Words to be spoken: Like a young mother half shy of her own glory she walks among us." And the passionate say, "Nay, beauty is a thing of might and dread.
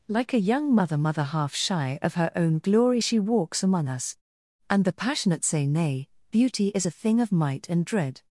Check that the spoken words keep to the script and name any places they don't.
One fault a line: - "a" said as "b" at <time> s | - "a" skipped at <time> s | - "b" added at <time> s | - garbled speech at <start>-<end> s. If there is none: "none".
- "mother" added at 1.0 s